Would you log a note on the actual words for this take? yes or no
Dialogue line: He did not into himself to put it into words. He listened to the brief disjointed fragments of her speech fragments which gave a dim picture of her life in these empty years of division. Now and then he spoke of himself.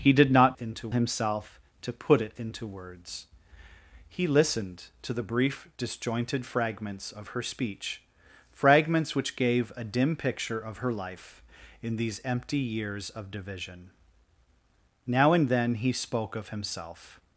no